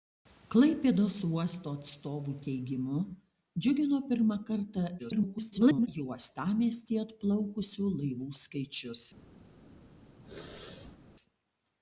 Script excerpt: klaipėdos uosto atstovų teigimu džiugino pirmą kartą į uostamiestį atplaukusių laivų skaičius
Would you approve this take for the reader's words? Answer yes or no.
no